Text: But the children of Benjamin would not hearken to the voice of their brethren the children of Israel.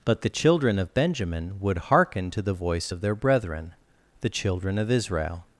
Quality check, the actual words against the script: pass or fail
fail